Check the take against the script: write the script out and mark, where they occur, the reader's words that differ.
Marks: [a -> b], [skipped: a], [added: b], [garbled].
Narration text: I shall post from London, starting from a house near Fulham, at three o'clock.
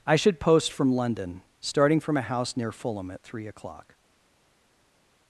I [shall -> should] post from London, starting from a house near Fulham, at three o'clock.